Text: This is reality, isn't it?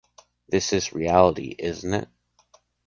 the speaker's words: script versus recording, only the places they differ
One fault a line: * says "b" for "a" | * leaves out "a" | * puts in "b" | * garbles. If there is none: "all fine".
all fine